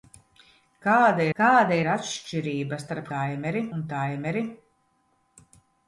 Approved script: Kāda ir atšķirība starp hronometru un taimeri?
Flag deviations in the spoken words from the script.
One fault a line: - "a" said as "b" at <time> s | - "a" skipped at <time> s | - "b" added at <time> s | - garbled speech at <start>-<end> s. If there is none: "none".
- "kāda" added at 1.4 s
- "hronometru" said as "taimeri" at 3.1 s